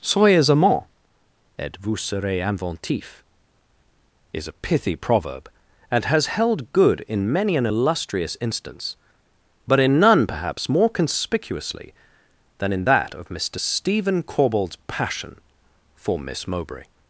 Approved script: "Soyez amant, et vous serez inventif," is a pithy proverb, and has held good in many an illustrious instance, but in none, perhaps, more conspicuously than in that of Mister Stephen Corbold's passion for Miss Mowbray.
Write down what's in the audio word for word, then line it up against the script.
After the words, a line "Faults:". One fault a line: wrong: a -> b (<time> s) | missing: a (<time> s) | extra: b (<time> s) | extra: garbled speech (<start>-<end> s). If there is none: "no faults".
"Soyez amant, et vous serez inventif," is a pithy proverb, and has held good in many an illustrious instance, but in none, perhaps, more conspicuously than in that of Mister Stephen Corbold's passion for Miss Mowbray.
Faults:
no faults